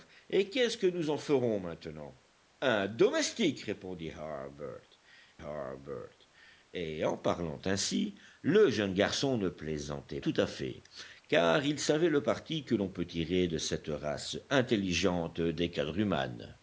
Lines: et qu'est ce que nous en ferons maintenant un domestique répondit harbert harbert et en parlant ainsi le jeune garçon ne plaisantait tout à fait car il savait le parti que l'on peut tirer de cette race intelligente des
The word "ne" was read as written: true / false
true